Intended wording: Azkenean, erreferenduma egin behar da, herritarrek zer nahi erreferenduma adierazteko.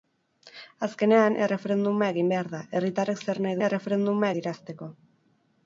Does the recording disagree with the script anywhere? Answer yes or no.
no